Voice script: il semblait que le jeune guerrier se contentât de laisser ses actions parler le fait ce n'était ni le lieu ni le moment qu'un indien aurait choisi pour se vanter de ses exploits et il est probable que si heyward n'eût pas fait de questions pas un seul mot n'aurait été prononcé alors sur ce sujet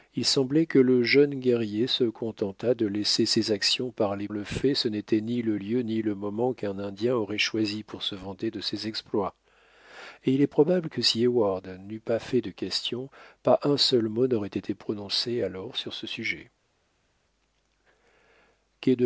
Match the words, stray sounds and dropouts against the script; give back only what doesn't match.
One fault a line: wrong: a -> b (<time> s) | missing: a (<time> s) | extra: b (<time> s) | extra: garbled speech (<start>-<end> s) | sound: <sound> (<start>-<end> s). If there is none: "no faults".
no faults